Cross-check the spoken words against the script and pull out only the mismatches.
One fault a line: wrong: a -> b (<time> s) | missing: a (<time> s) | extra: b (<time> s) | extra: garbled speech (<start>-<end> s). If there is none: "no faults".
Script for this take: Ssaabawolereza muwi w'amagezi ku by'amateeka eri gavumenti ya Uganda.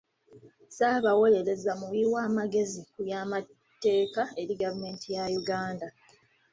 no faults